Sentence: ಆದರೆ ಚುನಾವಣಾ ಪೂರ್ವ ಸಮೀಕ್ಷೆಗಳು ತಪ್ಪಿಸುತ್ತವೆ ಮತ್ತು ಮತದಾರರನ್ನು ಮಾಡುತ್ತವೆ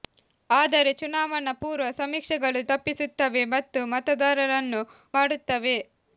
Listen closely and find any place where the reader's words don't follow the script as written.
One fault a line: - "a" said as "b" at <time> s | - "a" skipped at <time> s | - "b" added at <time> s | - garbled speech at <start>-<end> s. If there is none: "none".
none